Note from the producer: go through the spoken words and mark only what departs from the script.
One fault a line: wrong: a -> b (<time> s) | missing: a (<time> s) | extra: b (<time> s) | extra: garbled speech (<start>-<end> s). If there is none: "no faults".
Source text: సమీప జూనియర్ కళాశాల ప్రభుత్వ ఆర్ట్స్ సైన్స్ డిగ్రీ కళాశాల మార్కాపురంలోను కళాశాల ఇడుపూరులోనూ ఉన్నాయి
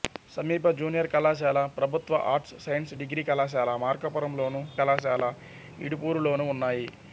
no faults